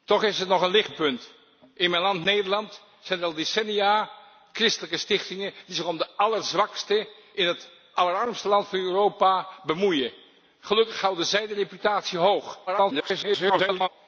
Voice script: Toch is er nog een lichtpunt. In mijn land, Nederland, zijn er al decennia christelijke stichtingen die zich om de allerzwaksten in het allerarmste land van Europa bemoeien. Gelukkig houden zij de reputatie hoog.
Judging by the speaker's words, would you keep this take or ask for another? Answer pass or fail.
fail